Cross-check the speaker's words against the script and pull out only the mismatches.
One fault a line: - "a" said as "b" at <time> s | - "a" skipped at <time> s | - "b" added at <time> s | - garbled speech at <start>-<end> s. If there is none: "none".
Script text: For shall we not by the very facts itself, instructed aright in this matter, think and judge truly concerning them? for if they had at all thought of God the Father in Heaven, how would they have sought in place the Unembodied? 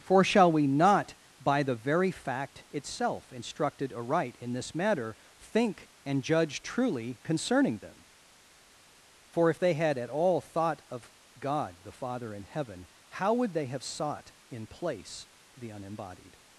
- "facts" said as "fact" at 2.1 s